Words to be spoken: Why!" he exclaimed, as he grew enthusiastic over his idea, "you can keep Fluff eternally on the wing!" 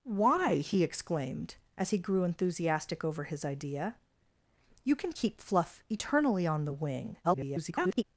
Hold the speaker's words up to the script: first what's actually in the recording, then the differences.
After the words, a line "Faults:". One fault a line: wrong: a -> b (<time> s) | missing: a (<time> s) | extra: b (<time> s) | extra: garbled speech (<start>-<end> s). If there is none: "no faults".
Why!" he exclaimed, as he grew enthusiastic over his idea, "you can keep Fluff eternally on the wing!" [garbled]
Faults:
extra: garbled speech (7.2-8.0 s)